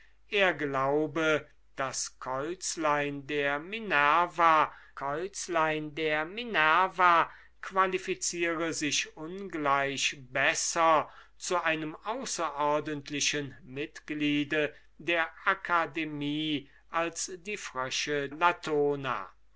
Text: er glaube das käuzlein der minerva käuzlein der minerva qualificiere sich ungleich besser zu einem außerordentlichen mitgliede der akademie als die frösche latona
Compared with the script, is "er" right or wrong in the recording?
right